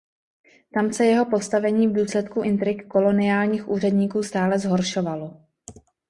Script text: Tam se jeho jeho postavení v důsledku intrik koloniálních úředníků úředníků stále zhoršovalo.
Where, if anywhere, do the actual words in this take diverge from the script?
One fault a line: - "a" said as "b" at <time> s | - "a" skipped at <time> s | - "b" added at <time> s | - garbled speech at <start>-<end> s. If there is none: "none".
- "jeho" skipped at 1.2 s
- "úředníků" skipped at 4.2 s